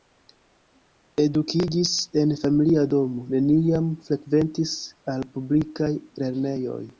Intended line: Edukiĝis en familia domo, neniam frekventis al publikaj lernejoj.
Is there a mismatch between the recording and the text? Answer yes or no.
no